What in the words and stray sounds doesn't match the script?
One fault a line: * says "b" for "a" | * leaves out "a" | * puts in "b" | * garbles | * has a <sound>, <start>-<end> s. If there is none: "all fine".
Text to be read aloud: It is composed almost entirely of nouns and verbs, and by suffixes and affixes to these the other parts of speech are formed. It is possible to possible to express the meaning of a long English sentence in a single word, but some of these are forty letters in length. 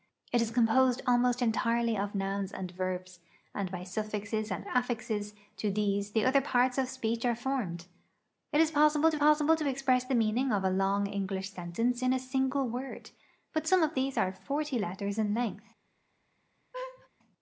* has a laugh, 16.7-17.1 s